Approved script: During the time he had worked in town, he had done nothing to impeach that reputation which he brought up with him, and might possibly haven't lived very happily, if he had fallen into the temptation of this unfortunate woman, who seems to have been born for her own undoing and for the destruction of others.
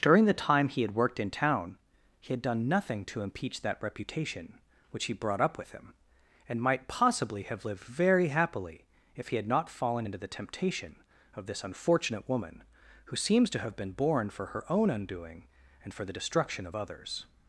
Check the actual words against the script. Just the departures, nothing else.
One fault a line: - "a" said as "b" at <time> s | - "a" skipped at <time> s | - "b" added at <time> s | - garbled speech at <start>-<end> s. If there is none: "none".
- "haven't" said as "have" at 7.4 s
- "not" added at 9.5 s